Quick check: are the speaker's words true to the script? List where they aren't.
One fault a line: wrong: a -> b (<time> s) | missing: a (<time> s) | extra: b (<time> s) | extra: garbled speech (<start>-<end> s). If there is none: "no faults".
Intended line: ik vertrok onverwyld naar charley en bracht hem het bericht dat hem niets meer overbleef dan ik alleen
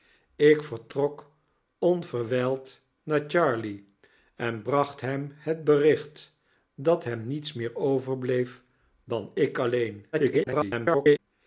extra: garbled speech (10.1-11.2 s)